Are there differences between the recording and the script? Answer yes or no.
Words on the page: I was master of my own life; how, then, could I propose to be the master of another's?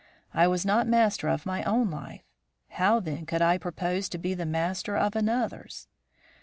yes